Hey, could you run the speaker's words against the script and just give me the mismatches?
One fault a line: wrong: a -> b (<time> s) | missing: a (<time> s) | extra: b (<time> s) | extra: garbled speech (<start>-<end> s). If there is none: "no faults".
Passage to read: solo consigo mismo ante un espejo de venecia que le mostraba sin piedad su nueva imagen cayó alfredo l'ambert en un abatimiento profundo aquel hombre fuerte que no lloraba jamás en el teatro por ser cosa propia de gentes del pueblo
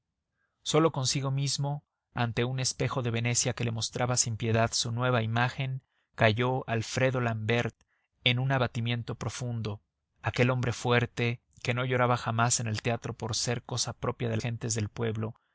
no faults